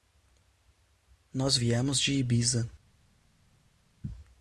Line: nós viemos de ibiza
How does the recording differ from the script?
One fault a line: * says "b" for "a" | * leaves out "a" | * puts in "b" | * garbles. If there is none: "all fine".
all fine